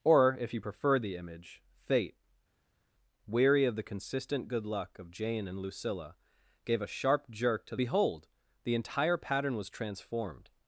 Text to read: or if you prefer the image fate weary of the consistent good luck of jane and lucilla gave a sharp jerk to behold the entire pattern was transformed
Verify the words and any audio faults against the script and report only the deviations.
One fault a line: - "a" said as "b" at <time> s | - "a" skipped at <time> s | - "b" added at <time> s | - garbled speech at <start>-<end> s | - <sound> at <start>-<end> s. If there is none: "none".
none